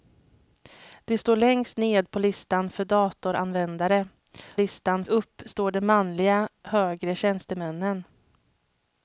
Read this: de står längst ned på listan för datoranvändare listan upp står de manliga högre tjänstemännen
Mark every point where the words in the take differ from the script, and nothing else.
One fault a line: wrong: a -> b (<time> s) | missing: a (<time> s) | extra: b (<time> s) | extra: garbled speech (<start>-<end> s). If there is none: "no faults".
no faults